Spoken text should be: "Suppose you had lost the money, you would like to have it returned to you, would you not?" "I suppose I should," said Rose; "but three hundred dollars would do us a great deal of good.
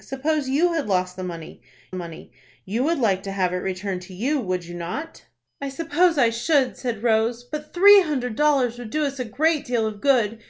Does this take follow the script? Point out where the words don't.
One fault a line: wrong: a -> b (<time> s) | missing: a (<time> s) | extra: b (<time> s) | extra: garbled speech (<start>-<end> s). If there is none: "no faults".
extra: money (1.9 s)